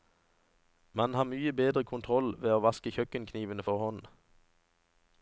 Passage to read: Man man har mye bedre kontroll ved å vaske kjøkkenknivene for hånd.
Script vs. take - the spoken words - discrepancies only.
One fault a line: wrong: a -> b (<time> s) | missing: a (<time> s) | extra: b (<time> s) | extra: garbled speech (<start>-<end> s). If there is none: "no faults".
missing: man (1.1 s)